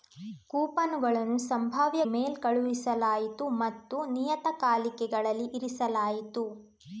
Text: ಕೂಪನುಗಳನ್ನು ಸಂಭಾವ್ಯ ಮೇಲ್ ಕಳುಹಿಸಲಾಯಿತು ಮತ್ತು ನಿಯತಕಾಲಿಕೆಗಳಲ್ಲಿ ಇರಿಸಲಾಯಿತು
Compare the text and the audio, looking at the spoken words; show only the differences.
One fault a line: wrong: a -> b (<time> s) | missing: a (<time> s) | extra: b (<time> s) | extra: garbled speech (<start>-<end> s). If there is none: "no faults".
no faults